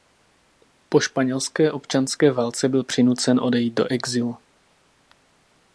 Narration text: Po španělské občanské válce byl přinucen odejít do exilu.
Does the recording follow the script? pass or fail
pass